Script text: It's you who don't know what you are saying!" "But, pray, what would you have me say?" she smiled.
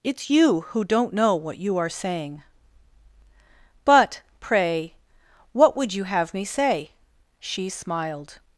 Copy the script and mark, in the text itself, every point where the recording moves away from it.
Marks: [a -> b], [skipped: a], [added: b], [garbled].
It's you who don't know what you are saying!" "But, pray, what would you have me say?" she smiled.